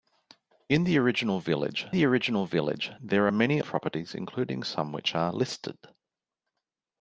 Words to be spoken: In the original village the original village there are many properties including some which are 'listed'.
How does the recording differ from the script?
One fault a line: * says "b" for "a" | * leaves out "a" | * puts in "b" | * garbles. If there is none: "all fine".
all fine